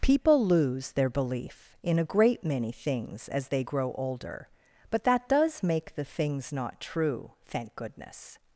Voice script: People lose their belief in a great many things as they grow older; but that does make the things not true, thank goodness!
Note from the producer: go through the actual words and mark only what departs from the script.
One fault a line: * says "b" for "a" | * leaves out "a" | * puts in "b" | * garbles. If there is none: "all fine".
all fine